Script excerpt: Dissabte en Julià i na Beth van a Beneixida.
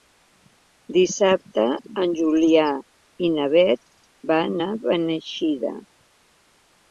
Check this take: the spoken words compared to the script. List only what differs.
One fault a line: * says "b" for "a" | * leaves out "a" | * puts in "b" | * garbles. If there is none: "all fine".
all fine